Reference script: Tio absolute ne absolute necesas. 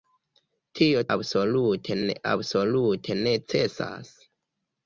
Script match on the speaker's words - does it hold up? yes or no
yes